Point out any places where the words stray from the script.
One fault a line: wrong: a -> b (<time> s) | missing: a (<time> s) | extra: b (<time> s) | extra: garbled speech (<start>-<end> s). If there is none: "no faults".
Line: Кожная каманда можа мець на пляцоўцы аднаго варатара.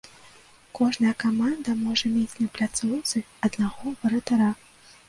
no faults